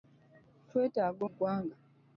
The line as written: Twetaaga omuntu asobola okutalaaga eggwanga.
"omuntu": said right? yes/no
no